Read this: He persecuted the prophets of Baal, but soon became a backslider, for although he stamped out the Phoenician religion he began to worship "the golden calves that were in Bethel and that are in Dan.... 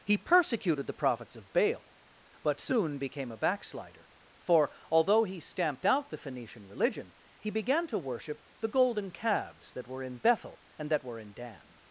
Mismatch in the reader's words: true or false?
true